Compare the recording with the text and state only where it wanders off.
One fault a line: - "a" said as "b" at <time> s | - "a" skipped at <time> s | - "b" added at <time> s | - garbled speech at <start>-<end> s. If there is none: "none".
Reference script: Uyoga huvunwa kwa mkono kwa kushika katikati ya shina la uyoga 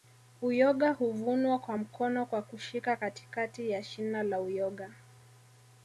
none